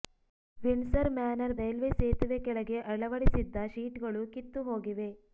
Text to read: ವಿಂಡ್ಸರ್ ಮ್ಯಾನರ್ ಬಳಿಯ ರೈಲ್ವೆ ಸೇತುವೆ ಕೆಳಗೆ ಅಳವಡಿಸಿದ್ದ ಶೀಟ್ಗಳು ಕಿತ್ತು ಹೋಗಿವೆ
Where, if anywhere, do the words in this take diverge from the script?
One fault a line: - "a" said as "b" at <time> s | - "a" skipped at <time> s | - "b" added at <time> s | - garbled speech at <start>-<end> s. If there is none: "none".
- "ಬಳಿಯ" skipped at 1.5 s